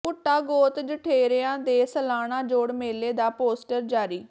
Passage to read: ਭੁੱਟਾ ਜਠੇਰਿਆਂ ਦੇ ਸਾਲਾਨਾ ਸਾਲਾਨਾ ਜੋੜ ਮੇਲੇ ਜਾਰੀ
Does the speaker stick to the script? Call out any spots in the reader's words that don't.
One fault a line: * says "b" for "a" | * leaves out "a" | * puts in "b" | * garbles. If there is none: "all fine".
* puts in "ਗੋਤ"
* leaves out "ਸਾਲਾਨਾ"
* puts in "ਦਾ ਪੋਸਟਰ"